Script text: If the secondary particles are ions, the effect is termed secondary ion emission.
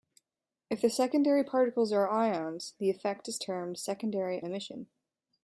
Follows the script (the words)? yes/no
no